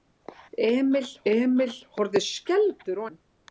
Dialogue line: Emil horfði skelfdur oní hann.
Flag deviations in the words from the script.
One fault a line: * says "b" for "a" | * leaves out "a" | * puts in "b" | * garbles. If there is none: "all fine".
* puts in "emil"
* leaves out "oní"